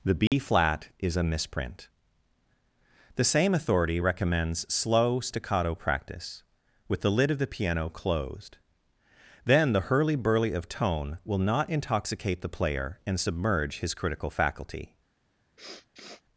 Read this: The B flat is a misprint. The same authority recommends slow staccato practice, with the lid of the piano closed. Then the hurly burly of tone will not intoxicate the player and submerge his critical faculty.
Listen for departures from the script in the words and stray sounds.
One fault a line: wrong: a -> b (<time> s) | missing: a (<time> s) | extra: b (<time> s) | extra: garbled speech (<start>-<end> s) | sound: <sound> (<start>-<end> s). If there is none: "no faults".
sound: dropout (0.3-0.3 s)
sound: sniff (15.6-16.2 s)